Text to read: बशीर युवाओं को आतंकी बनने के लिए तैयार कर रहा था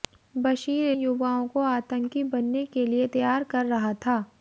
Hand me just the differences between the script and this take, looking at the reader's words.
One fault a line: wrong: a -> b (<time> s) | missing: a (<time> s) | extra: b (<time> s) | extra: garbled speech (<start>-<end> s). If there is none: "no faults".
no faults